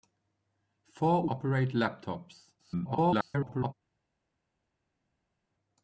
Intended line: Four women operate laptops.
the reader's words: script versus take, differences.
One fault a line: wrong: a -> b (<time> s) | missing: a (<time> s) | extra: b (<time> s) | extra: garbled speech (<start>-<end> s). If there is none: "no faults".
missing: women (1.3 s)
extra: garbled speech (2.6-3.7 s)